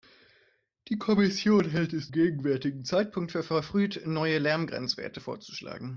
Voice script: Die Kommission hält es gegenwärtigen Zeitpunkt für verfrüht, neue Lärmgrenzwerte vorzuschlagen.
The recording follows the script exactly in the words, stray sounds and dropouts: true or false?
true